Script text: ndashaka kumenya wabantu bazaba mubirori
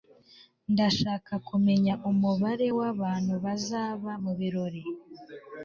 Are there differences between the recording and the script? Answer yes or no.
yes